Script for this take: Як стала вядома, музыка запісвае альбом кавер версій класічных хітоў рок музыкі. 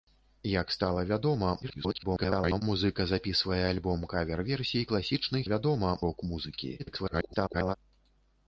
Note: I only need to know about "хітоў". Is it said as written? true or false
false